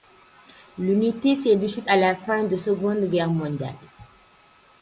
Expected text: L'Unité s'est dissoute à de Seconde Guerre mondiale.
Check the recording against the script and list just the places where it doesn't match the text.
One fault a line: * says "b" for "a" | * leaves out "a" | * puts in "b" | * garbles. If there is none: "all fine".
* puts in "la fin"